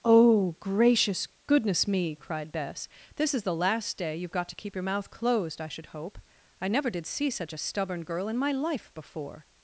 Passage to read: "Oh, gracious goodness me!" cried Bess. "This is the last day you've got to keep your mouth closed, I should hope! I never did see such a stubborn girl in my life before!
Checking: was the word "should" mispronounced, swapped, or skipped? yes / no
no